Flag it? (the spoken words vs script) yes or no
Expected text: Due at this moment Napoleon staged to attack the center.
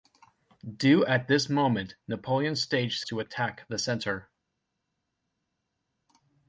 no